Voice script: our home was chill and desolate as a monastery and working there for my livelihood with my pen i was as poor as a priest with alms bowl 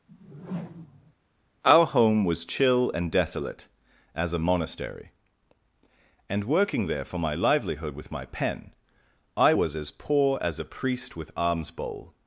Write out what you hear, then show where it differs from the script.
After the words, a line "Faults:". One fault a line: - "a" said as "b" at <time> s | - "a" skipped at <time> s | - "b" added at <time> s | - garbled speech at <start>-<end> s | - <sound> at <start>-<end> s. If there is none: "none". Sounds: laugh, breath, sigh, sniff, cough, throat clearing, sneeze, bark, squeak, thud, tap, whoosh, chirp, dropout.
our home was chill and desolate as a monastery and working there for my livelihood with my pen i was as poor as a priest with alms bowl
Faults:
- whoosh at 0.1-1.1 s